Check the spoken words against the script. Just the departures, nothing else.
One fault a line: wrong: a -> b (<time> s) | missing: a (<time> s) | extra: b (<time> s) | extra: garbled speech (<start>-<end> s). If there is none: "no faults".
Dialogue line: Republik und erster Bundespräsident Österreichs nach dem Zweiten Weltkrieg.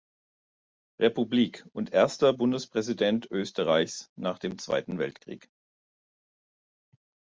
no faults